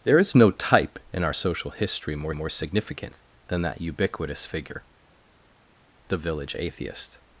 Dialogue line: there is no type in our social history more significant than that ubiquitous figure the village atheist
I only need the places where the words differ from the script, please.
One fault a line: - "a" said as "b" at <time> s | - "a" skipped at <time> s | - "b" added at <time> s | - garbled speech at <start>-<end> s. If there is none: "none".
- "more" added at 2.3 s